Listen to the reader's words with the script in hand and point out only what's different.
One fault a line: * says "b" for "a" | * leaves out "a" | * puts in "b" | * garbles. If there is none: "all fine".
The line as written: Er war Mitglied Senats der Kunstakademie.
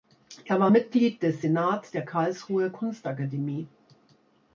* puts in "des"
* puts in "Karlsruher"